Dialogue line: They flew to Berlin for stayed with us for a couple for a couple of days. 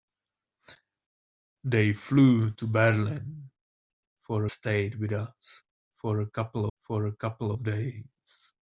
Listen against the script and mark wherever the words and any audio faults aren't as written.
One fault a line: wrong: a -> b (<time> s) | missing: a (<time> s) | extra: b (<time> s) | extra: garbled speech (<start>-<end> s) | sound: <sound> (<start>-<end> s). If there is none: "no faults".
no faults